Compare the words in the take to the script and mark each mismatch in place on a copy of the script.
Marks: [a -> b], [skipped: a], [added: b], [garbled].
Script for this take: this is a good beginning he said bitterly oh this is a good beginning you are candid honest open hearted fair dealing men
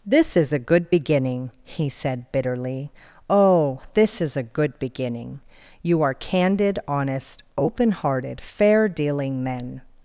this is a good beginning he said bitterly oh this is a good beginning you are candid honest open hearted fair dealing men